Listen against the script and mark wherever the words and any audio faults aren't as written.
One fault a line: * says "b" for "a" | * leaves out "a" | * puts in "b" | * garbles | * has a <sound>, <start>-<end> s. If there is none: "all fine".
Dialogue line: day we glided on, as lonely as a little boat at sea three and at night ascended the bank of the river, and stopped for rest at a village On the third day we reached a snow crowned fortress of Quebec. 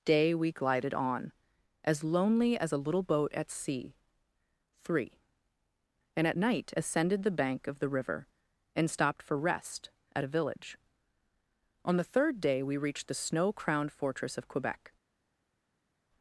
* says "the" for "a"